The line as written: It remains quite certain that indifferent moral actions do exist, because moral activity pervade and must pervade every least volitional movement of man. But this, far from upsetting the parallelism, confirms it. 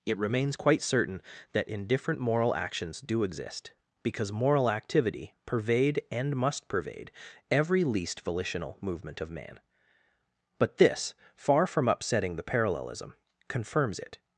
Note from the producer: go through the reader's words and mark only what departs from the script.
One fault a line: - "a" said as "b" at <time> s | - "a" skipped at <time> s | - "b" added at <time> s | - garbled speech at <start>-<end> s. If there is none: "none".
none